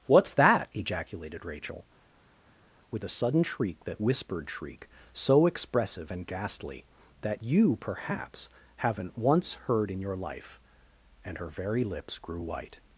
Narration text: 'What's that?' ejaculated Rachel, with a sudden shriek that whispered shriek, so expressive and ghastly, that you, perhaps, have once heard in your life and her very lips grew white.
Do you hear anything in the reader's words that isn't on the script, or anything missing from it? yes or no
yes